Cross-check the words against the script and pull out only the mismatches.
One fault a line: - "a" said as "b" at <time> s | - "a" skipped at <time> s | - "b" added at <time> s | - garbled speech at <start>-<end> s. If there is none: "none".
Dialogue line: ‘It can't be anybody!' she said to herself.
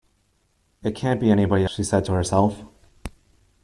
none